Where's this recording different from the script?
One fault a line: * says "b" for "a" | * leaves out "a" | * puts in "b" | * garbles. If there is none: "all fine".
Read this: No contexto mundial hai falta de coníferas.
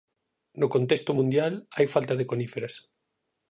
all fine